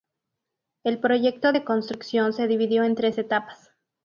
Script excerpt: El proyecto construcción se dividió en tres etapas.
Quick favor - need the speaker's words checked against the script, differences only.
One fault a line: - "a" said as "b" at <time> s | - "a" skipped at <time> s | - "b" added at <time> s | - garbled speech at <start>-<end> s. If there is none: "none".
- "de" added at 1.5 s